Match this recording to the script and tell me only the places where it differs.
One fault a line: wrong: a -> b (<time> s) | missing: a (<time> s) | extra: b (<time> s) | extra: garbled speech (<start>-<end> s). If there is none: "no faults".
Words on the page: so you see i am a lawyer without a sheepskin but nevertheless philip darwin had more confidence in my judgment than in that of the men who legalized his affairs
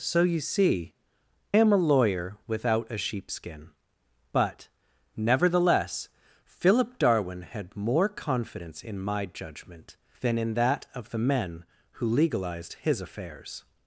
missing: i (0.9 s)